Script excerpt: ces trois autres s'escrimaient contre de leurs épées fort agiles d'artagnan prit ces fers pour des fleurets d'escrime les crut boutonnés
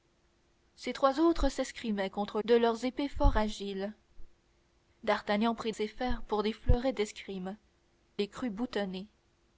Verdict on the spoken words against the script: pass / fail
pass